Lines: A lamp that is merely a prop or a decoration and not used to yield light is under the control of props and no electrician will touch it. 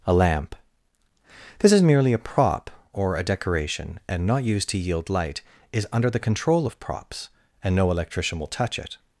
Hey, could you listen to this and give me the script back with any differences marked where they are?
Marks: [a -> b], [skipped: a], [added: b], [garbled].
A lamp [that -> this] is merely a prop or a decoration and not used to yield light is under the control of props and no electrician will touch it.